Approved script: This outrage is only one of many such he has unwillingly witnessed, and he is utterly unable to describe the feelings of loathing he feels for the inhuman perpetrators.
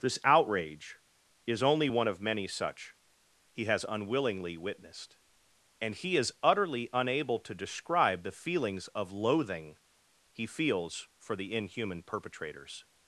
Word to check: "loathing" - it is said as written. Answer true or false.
true